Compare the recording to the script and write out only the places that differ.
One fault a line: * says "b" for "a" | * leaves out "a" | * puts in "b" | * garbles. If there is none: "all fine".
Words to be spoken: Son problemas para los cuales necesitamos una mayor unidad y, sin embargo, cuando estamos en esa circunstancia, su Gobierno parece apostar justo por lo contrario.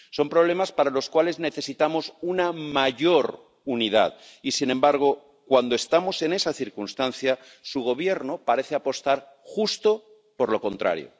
all fine